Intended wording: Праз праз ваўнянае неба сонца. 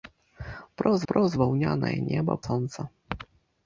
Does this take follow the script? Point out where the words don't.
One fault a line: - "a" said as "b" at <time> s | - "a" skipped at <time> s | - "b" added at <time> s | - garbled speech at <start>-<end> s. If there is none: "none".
none